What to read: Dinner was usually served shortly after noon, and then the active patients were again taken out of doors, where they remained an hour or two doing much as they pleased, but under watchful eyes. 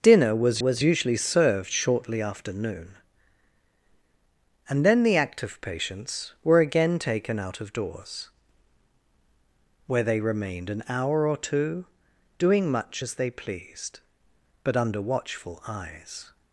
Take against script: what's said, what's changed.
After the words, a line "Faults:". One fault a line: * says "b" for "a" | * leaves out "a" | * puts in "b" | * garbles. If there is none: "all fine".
Dinner was was usually served shortly after noon, and then the active patients were again taken out of doors, where they remained an hour or two doing much as they pleased, but under watchful eyes.
Faults:
* puts in "was"